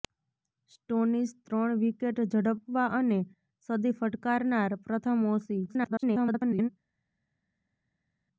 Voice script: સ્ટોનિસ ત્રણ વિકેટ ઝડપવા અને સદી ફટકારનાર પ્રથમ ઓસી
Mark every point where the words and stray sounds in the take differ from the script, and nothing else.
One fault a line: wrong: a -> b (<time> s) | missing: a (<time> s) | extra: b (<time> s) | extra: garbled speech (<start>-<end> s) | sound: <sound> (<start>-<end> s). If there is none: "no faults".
extra: garbled speech (5.7-6.7 s)